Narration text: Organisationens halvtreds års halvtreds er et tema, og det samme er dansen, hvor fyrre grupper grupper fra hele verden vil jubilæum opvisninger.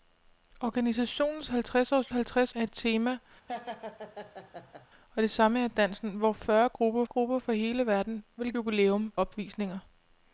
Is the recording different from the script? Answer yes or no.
no